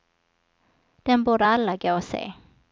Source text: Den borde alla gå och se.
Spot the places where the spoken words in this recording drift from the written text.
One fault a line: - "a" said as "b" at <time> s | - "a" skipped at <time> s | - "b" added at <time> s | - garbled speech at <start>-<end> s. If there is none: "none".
none